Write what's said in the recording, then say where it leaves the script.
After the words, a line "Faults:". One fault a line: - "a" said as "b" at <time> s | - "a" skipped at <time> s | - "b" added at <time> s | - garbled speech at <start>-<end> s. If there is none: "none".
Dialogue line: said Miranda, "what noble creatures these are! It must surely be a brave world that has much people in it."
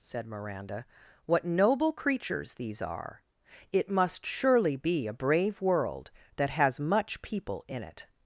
said Miranda, "what noble creatures these are! It must surely be a brave world that has much people in it."
Faults:
none